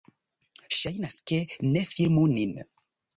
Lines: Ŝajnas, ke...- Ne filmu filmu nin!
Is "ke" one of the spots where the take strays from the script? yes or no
no